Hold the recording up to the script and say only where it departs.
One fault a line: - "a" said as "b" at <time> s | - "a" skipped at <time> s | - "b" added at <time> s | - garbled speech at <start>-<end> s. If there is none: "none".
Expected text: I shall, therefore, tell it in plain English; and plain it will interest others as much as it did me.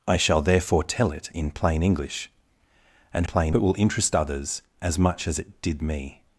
none